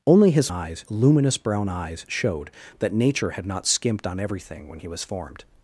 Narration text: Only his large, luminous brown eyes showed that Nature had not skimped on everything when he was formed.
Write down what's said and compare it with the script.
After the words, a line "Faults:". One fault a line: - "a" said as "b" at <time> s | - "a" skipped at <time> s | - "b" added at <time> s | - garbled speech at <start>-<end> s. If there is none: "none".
Only his eyes, luminous brown eyes showed that Nature had not skimped on everything when he was formed.
Faults:
- "large" said as "eyes" at 0.5 s